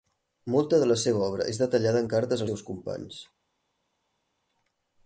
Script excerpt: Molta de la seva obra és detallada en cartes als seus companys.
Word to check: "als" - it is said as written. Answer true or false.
false